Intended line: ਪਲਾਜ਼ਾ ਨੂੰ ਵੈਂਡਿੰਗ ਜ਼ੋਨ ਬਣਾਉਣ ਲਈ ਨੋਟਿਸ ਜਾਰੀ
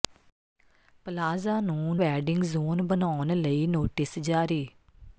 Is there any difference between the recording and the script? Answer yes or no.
no